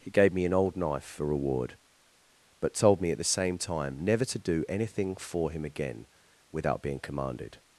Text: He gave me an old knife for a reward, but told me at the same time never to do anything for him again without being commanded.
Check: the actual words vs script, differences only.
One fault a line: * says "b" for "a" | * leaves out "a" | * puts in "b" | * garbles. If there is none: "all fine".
* leaves out "a"